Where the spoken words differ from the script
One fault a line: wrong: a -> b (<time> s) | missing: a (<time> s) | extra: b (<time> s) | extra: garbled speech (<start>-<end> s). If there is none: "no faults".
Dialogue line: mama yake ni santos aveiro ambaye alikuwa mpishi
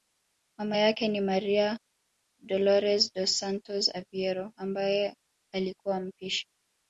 extra: maria dolores dos (1.2 s)